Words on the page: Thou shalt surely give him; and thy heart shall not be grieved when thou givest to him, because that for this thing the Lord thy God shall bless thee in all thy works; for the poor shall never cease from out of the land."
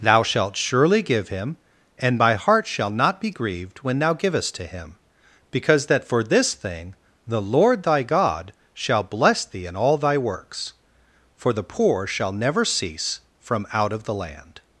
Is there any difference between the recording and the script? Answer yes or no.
yes